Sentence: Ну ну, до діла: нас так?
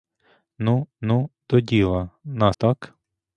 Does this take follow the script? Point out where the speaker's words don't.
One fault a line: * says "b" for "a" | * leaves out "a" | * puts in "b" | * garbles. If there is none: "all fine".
all fine